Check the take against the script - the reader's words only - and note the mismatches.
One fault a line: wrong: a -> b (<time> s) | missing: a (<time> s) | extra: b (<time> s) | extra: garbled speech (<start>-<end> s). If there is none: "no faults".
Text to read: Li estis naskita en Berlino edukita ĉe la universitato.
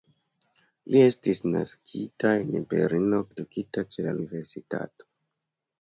no faults